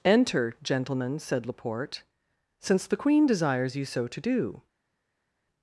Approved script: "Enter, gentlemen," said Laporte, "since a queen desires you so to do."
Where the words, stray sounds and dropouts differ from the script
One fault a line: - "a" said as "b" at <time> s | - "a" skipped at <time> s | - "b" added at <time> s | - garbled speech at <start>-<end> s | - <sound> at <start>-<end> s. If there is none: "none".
- "a" said as "the" at 2.9 s